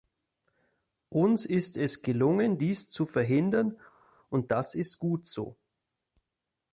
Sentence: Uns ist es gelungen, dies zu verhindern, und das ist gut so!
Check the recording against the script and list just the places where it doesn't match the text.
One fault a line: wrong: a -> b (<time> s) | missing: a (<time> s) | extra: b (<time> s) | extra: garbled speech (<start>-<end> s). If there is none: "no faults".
no faults